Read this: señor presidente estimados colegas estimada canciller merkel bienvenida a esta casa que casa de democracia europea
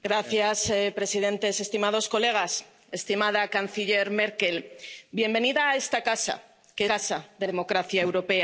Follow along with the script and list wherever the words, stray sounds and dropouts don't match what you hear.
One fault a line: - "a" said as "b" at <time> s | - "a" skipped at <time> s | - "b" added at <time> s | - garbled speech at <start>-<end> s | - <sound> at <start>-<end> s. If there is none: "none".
none